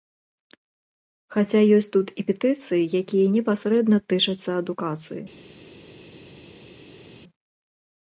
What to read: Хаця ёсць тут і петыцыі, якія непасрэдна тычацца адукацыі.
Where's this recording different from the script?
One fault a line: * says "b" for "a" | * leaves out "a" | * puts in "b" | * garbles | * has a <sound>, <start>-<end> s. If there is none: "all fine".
all fine